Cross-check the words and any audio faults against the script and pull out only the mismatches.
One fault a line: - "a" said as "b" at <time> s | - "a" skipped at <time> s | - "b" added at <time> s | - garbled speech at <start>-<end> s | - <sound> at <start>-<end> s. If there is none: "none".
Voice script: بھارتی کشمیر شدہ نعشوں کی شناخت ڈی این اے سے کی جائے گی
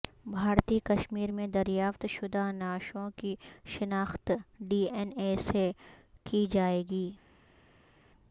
- "میں دریافت" added at 1.3 s